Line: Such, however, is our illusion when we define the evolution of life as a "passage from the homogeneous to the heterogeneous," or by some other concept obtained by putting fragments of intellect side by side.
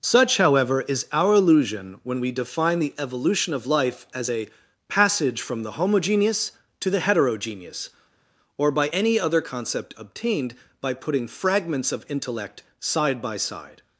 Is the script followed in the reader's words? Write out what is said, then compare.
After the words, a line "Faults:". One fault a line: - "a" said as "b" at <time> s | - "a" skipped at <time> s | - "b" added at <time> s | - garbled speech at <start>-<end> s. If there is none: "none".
Such, however, is our illusion when we define the evolution of life as a "passage from the homogeneous to the heterogeneous," or by any other concept obtained by putting fragments of intellect side by side.
Faults:
- "some" said as "any" at 8.9 s